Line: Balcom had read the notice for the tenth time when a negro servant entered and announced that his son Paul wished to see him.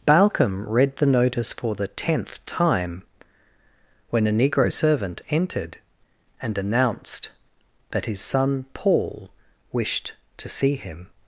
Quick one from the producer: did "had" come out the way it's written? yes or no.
no